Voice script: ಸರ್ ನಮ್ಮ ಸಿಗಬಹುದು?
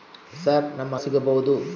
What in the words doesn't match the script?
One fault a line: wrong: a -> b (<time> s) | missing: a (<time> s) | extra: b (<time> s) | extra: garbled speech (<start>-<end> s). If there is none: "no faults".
no faults